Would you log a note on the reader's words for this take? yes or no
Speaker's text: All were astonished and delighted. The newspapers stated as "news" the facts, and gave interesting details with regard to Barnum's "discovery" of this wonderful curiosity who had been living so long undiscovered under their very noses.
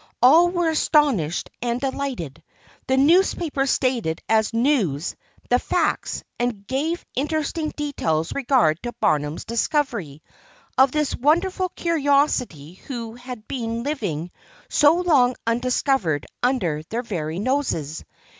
yes